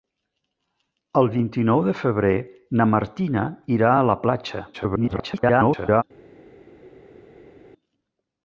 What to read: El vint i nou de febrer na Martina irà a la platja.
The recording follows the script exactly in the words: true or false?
false